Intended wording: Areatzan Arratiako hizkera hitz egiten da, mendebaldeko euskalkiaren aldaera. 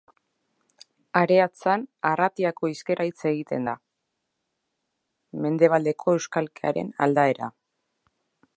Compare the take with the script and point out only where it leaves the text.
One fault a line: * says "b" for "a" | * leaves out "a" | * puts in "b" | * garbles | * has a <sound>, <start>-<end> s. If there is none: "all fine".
all fine